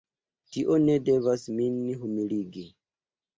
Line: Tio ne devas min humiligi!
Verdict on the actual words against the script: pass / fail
pass